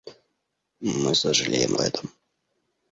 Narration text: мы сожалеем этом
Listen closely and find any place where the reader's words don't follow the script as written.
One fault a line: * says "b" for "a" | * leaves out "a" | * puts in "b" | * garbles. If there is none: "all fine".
all fine